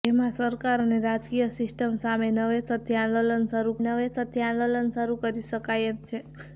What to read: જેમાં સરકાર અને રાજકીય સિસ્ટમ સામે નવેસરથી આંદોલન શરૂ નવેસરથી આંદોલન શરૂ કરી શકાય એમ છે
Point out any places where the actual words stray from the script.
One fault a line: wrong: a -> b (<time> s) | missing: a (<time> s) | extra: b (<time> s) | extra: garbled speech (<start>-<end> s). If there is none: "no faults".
no faults